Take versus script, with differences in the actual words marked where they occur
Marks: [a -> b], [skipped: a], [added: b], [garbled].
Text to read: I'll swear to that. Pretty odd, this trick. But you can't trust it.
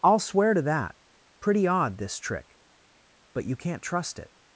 I'll swear to that. Pretty odd, this trick. But you can't trust it.